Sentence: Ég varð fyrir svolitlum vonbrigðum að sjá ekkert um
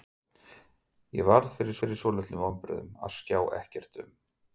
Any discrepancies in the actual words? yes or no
yes